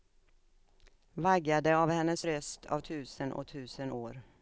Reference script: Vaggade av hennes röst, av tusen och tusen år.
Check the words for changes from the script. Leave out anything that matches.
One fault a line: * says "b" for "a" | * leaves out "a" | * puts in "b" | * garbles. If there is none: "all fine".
all fine